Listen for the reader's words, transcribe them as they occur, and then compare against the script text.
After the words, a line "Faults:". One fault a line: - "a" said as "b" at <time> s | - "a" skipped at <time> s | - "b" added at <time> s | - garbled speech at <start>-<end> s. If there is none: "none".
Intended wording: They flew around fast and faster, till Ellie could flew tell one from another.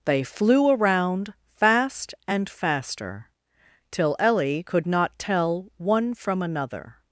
They flew around fast and faster, till Ellie could not tell one from another.
Faults:
- "flew" said as "not" at 4.9 s